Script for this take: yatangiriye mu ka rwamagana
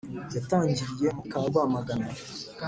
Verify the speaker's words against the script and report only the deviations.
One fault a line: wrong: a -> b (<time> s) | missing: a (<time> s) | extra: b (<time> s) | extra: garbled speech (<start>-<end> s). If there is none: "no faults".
no faults